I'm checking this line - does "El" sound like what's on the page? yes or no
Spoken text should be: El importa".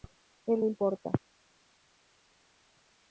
yes